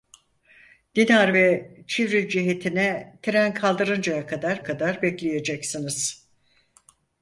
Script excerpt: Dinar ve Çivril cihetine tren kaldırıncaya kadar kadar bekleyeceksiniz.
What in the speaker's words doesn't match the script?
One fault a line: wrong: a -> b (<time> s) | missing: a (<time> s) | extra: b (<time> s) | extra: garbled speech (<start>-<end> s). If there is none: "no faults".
no faults